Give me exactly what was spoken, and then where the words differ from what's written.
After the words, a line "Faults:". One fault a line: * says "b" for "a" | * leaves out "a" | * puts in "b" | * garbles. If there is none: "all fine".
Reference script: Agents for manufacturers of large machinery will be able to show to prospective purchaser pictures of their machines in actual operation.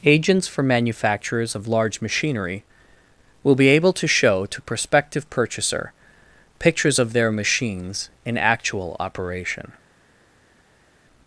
Agents for manufacturers of large machinery will be able to show to prospective purchaser pictures of their machines in actual operation.
Faults:
all fine